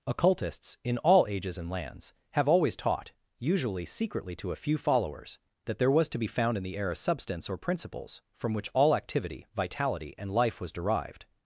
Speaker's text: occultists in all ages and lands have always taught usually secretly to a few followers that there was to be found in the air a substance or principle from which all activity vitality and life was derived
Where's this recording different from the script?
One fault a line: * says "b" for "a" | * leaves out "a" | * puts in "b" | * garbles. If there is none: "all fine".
* says "principles" for "principle"